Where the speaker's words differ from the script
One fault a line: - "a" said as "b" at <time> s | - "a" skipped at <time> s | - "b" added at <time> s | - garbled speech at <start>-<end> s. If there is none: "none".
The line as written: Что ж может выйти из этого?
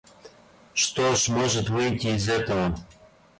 none